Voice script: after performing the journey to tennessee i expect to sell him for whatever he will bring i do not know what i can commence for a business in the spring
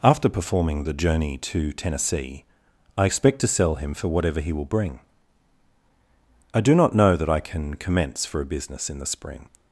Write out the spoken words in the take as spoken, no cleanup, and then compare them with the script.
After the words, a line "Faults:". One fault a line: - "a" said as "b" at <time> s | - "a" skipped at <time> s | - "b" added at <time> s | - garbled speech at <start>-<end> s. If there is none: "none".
after performing the journey to tennessee i expect to sell him for whatever he will bring i do not know that i can commence for a business in the spring
Faults:
- "what" said as "that" at 7.2 s